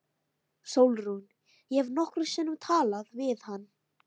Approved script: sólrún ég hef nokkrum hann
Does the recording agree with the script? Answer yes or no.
no